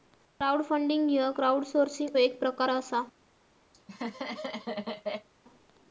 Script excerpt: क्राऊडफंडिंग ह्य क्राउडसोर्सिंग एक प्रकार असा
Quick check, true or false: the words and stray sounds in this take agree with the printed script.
false